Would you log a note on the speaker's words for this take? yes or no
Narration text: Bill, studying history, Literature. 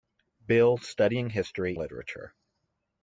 no